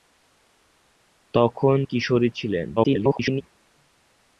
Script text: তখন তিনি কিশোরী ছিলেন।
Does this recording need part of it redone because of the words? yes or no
yes